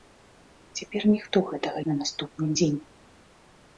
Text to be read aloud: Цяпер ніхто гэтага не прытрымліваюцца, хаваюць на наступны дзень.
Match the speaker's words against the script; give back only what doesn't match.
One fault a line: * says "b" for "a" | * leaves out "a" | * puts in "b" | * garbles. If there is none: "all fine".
* leaves out "не прытрымліваюцца хаваюць"